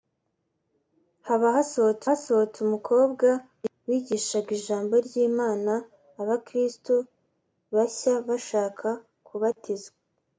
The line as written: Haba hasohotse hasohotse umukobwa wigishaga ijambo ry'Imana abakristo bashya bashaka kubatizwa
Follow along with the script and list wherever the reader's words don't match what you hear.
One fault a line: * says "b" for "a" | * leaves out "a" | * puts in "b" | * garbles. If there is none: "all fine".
all fine